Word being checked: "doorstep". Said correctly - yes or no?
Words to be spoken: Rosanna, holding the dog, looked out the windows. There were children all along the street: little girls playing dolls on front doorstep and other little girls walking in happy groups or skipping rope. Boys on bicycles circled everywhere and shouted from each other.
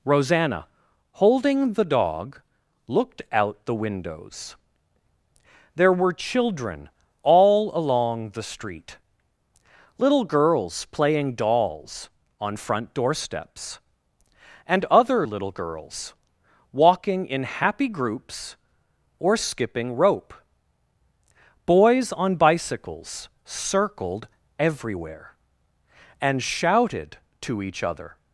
no